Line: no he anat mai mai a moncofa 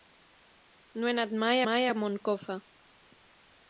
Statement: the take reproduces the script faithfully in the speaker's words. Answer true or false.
true